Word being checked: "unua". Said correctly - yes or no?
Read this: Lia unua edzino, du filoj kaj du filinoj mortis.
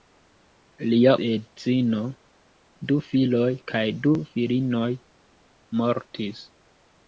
no